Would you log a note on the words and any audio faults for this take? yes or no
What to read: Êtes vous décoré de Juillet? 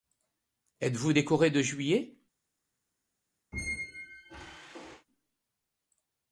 yes